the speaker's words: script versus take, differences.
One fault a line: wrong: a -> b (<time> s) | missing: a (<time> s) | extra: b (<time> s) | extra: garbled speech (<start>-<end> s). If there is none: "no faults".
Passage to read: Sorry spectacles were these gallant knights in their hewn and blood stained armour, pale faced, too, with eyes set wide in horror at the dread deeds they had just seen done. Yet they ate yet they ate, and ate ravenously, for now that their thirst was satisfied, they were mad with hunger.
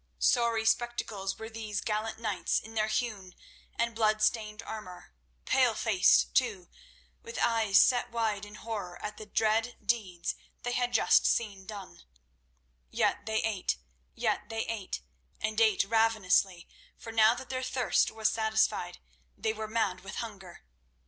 no faults